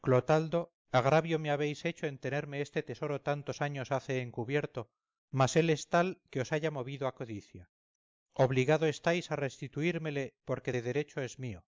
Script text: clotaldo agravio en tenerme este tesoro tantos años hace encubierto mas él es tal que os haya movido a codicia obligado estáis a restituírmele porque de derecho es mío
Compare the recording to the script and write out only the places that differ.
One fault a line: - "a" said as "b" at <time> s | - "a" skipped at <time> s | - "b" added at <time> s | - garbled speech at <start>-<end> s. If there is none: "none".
- "me habéis hecho" added at 1.4 s